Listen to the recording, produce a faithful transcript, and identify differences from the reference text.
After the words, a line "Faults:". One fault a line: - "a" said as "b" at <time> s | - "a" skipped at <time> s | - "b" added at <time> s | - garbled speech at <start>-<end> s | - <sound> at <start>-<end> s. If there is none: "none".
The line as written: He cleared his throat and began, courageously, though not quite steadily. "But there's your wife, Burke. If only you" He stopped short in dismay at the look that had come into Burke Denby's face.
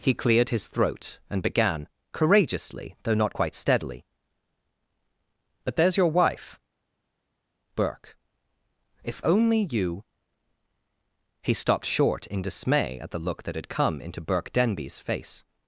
He cleared his throat and began, courageously, though not quite steadily. "But there's your wife, Burke. If only you" He stopped short in dismay at the look that had come into Burke Denby's face.
Faults:
none